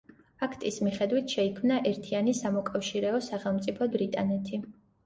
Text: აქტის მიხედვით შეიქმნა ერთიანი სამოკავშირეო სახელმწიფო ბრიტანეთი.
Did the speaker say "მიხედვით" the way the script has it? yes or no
yes